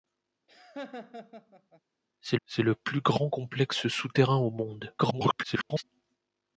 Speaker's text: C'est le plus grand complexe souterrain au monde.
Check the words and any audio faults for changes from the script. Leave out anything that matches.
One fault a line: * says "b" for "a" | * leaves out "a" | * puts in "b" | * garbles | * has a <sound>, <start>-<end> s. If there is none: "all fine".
* has a laugh, 0.5-1.8 s
* puts in "c'est"
* garbles